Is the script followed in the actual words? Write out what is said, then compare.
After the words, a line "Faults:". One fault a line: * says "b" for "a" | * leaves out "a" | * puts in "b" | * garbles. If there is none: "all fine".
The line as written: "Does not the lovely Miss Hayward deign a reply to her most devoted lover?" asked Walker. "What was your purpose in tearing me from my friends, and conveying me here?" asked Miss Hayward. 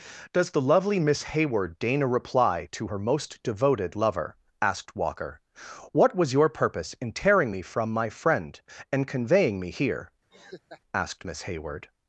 "Does the lovely Miss Hayward deign a reply to her most devoted lover?" asked Walker. "What was your purpose in tearing me from my friend, and conveying me here?" asked Miss Hayward.
Faults:
* leaves out "not"
* says "friend" for "friends"